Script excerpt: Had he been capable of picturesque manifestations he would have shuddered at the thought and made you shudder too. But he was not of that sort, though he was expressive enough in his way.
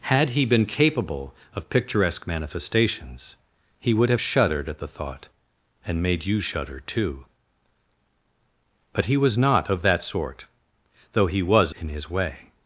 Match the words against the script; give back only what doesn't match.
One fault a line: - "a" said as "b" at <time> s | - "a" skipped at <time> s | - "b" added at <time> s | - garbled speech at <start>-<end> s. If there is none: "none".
- "expressive enough" skipped at 11.7 s